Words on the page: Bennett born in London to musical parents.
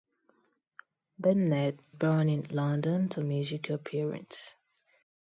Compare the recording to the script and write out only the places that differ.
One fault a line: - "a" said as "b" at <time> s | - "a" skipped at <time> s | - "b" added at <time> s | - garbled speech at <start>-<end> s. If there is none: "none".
none